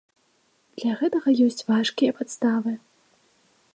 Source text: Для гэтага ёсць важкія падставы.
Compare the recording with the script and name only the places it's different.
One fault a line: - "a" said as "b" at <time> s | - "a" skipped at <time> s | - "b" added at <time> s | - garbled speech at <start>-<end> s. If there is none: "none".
none